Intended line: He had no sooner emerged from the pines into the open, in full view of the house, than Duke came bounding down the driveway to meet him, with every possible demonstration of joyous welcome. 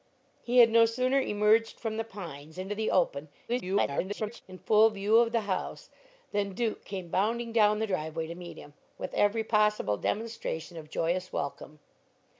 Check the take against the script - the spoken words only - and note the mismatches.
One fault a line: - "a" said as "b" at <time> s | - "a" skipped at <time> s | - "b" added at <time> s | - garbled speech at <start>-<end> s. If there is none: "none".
- garbled speech at 3.5-4.4 s